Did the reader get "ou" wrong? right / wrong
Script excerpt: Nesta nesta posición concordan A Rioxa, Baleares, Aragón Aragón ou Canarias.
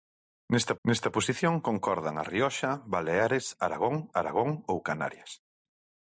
right